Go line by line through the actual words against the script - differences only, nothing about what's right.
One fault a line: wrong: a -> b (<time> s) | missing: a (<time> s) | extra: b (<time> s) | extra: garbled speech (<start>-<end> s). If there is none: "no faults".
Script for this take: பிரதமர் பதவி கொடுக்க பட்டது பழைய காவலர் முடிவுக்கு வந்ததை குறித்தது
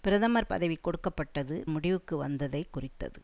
missing: பழைய காவலர் (1.6 s)